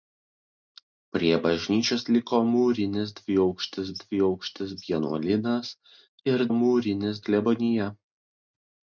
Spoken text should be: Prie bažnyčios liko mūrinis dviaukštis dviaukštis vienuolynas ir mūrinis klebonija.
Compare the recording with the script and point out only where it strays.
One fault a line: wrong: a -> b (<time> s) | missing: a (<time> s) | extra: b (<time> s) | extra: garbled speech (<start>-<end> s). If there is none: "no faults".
no faults